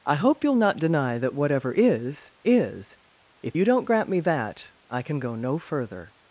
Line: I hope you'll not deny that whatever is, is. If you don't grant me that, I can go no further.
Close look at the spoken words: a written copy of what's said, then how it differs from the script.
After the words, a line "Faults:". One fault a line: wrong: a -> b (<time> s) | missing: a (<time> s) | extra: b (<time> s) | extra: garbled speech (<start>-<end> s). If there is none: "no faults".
I hope you'll not deny that whatever is, is. If you don't grant me that, I can go no further.
Faults:
no faults